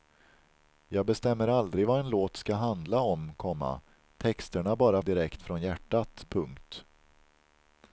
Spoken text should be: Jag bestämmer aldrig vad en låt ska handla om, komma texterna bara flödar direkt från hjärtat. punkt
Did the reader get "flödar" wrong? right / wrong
wrong